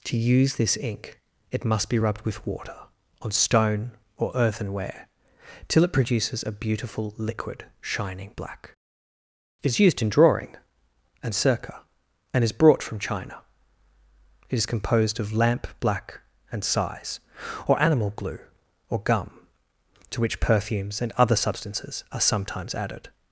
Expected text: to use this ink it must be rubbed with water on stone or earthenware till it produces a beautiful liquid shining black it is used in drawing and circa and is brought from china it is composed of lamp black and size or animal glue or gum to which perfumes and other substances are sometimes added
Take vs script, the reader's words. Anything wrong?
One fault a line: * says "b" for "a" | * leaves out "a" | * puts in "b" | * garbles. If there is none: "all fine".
all fine